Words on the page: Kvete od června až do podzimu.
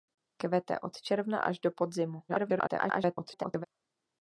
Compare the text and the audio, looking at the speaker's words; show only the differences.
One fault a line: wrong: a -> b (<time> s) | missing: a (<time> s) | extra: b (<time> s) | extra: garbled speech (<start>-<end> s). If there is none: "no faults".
extra: garbled speech (2.3-3.7 s)